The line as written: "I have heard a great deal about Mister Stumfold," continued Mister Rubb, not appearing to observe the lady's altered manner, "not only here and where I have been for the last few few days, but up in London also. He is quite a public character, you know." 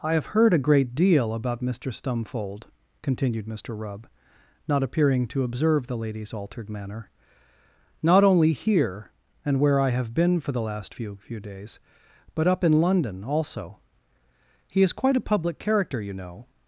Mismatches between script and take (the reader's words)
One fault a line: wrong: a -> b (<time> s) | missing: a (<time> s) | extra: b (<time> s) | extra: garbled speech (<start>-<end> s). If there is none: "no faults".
no faults